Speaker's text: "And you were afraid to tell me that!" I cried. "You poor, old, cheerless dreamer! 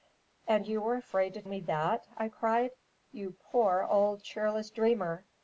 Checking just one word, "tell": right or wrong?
wrong